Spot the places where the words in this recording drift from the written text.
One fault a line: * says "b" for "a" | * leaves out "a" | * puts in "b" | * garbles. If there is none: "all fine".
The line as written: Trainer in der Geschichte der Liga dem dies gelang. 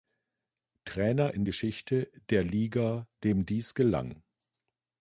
* leaves out "der"